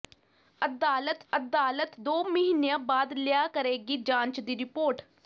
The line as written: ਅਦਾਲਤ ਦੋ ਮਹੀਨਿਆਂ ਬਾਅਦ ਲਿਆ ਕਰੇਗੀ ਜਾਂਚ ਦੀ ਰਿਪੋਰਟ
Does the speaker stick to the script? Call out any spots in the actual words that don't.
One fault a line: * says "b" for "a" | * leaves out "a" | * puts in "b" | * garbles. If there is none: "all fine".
* puts in "ਅਦਾਲਤ"